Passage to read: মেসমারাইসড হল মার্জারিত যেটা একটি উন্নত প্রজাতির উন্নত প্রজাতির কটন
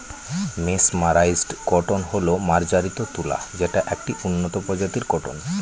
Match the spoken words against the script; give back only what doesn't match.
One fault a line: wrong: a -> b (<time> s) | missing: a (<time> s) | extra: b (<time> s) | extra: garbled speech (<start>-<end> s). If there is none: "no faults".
extra: কটন (1.6 s)
extra: তুলা (3.1 s)
missing: উন্নত প্রজাতির (5.0 s)